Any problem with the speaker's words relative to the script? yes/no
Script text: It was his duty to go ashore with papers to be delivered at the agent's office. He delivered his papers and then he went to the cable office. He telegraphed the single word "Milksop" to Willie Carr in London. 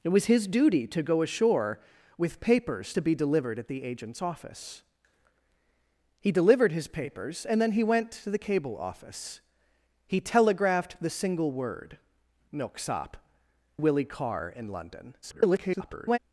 yes